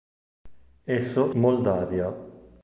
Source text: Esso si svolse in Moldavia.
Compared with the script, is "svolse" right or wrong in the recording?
wrong